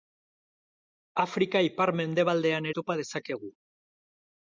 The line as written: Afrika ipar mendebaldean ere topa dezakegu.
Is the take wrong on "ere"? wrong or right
wrong